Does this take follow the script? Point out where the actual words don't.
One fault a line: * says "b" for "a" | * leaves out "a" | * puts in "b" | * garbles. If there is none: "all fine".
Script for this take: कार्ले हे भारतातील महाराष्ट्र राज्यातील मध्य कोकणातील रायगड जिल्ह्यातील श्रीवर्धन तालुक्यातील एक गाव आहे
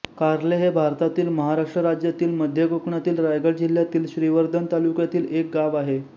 all fine